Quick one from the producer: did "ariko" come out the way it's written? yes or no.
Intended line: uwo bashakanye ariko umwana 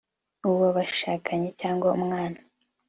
no